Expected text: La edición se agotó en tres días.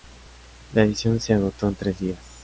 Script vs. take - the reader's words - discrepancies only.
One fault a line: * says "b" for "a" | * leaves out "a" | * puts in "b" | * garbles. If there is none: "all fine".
all fine